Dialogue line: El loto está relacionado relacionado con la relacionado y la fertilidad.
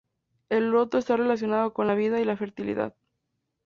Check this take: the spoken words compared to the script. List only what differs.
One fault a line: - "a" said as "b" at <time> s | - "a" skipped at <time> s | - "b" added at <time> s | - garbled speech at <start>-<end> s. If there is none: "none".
- "relacionado" skipped at 1.8 s
- "relacionado" said as "vida" at 1.9 s